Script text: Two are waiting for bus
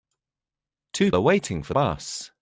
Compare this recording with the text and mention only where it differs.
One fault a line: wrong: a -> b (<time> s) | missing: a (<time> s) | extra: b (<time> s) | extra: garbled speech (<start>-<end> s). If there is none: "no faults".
no faults